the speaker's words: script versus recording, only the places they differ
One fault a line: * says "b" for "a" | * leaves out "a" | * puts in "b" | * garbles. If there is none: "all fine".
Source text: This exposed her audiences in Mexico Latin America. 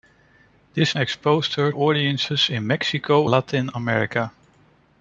all fine